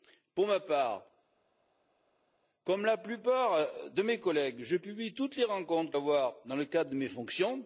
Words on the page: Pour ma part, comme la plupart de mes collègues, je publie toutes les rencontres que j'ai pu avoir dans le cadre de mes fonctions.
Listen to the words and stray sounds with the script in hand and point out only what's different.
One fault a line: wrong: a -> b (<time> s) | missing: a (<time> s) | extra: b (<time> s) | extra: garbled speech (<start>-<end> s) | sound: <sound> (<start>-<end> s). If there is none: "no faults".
missing: j'ai pu (6.0 s)